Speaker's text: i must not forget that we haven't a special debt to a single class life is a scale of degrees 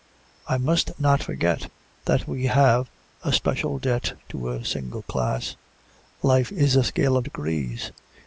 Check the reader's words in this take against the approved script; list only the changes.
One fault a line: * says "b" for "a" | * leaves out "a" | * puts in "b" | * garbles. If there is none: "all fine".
* says "have" for "haven't"